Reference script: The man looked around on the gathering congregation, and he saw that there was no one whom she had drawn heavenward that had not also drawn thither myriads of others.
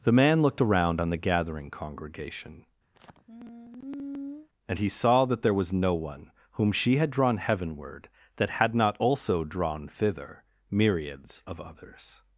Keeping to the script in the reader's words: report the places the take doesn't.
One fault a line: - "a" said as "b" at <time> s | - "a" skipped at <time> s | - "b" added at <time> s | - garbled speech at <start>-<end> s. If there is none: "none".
none